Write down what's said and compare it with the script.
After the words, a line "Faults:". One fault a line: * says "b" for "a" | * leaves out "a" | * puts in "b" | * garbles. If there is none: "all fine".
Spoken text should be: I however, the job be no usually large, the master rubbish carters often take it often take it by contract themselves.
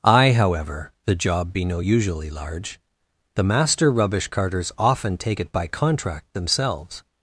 I however, the job be no usually large, the master rubbish carters often take it by contract themselves.
Faults:
* leaves out "often take it"